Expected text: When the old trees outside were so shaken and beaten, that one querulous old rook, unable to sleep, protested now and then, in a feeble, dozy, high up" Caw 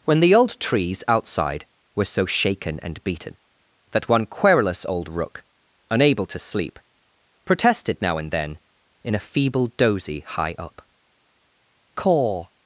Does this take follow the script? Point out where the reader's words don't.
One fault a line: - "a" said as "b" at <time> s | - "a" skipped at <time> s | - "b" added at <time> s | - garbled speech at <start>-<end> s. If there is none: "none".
none